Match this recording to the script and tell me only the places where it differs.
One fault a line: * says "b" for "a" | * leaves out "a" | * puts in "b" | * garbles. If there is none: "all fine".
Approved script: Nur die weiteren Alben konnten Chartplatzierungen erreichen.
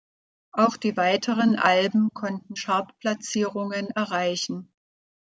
* says "Auch" for "Nur"